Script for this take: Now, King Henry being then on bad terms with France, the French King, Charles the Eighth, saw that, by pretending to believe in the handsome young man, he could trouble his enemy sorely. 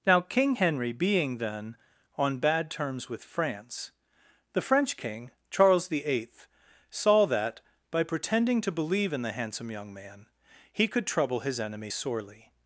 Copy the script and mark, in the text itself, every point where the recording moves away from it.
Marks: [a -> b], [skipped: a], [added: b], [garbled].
Now, King Henry being then on bad terms with France, the French King, Charles the Eighth, saw that, by pretending to believe in the handsome young man, he could trouble his enemy sorely.